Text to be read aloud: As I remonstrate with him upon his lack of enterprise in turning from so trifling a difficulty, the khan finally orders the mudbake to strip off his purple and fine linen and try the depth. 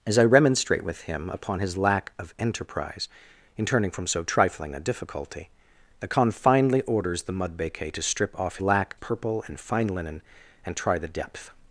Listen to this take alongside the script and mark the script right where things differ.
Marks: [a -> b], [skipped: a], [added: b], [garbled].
As I remonstrate with him upon his lack of enterprise in turning from so trifling a difficulty, the khan finally orders the mudbake to strip off [his -> lack] purple and fine linen and try the depth.